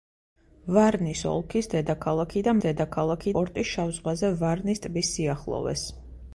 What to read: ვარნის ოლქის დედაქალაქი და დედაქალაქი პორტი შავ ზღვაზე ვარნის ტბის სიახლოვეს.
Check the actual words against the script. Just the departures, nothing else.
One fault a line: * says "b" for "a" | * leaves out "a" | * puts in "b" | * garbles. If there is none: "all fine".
all fine